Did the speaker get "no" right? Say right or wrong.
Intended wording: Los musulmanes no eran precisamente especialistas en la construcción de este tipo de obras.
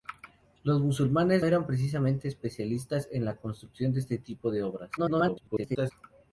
wrong